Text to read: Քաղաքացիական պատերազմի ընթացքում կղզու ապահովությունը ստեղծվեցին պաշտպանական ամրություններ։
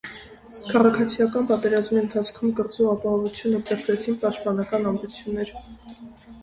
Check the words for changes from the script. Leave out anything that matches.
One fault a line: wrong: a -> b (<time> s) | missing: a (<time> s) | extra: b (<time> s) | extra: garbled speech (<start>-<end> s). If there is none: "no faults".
no faults